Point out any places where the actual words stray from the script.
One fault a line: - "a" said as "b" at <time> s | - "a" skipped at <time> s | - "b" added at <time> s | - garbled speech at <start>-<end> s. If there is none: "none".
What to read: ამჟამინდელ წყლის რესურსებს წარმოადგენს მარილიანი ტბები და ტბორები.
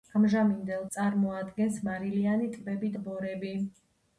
- "წყლის რესურსებს" skipped at 0.9 s
- "და" skipped at 2.9 s